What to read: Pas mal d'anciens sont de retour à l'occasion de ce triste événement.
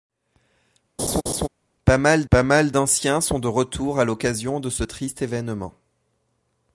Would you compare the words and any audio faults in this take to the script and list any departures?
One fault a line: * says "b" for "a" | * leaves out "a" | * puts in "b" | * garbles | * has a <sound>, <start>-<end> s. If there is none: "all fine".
* has a laugh, 1.0-1.5 s
* puts in "pas mal"